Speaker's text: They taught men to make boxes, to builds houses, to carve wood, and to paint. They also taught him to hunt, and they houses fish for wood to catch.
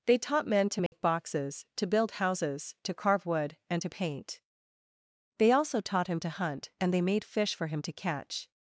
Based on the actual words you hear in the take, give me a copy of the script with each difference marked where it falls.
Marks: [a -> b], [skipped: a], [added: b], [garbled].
They taught men to make boxes, to [builds -> build] houses, to carve wood, and to paint. They also taught him to hunt, and they [houses -> made] fish for [wood -> him] to catch.